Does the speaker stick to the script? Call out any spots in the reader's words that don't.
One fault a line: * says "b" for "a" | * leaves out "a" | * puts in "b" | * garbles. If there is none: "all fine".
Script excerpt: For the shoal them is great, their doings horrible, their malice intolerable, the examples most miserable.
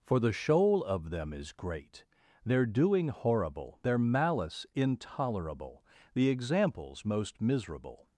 * puts in "of"
* says "doing" for "doings"